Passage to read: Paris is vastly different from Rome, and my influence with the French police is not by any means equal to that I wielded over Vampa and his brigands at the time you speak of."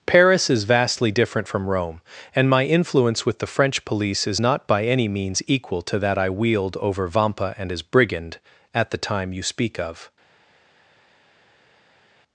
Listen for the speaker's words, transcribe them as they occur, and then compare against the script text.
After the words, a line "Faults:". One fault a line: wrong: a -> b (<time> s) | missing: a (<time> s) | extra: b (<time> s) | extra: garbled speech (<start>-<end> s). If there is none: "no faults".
Paris is vastly different from Rome, and my influence with the French police is not by any means equal to that I wield over Vampa and his brigand at the time you speak of."
Faults:
wrong: wielded -> wield (6.3 s)
wrong: brigands -> brigand (7.8 s)